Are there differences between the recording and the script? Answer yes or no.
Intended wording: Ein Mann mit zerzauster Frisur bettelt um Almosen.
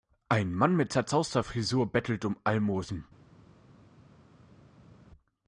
no